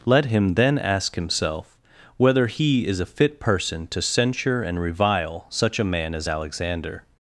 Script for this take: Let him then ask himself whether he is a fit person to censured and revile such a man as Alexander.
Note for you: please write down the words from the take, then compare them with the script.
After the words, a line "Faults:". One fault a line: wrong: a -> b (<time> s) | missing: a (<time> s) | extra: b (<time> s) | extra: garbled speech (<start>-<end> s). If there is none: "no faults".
Let him then ask himself whether he is a fit person to censure and revile such a man as Alexander.
Faults:
wrong: censured -> censure (4.0 s)